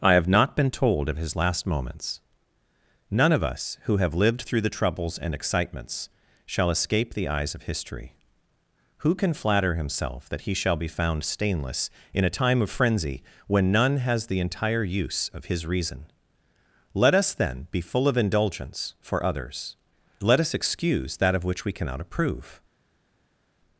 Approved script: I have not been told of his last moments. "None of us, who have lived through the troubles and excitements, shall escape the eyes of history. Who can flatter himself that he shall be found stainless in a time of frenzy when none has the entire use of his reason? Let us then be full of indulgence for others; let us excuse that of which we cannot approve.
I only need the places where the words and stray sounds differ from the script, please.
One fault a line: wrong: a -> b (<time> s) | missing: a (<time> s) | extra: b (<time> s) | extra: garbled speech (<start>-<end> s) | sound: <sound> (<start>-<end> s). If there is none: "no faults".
no faults